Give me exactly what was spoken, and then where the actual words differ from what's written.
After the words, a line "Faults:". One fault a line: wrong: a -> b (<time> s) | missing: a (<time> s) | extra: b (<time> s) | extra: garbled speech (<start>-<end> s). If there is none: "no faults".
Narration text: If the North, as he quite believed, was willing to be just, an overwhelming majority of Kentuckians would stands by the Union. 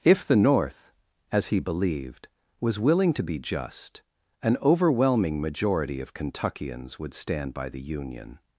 If the North, as he believed, was willing to be just, an overwhelming majority of Kentuckians would stand by the Union.
Faults:
missing: quite (1.6 s)
wrong: stands -> stand (7.1 s)